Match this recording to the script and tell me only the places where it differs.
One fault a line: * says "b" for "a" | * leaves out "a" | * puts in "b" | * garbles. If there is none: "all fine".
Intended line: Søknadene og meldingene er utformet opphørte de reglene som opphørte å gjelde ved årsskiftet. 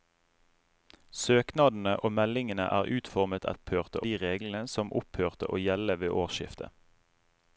all fine